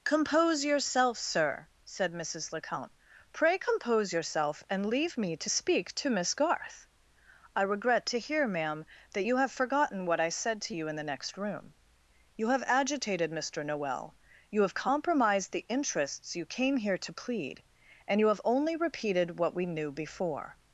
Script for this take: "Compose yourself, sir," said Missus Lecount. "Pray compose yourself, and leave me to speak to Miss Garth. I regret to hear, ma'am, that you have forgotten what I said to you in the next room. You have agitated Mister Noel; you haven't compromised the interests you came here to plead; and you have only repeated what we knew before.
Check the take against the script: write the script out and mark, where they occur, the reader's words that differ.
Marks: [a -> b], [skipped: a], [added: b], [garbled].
"Compose yourself, sir," said Missus Lecount. "Pray compose yourself, and leave me to speak to Miss Garth. I regret to hear, ma'am, that you have forgotten what I said to you in the next room. You have agitated Mister Noel; you [haven't -> have] compromised the interests you came here to plead; and you have only repeated what we knew before.